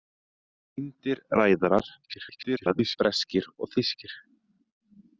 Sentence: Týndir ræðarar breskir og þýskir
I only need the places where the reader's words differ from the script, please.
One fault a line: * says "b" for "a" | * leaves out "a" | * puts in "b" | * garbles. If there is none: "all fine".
* garbles